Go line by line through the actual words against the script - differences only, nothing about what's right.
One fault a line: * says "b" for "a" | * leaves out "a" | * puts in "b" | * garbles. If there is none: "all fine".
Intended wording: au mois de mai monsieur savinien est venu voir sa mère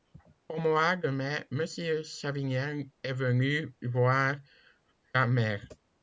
all fine